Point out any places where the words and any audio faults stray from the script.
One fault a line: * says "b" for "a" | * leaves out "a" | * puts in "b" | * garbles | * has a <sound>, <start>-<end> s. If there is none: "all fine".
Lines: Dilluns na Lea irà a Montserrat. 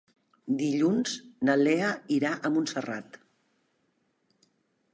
all fine